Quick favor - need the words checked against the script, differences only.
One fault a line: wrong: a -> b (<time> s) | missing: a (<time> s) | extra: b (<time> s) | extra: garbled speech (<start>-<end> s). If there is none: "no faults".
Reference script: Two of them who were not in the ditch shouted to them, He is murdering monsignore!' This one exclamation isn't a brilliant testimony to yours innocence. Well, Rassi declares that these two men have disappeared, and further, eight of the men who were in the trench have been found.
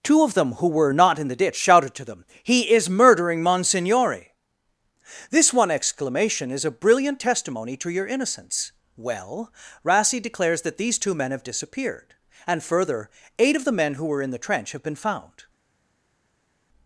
wrong: isn't -> is (6.5 s)
wrong: yours -> your (7.9 s)